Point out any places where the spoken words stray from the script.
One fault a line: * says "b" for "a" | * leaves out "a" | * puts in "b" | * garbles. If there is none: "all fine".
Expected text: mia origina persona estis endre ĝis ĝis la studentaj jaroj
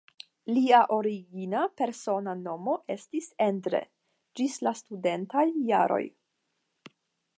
* says "lia" for "mia"
* puts in "nomo"
* leaves out "ĝis"